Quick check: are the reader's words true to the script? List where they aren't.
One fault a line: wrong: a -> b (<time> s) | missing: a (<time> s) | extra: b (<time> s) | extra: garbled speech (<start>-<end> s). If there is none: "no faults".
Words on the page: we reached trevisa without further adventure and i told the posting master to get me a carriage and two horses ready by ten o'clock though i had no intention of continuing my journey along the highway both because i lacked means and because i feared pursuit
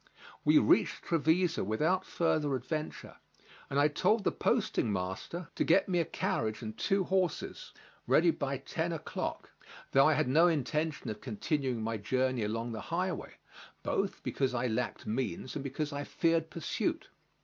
no faults